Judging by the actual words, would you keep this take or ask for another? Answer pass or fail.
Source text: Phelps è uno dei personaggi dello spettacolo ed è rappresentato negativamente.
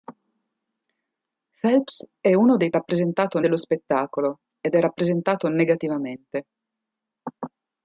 fail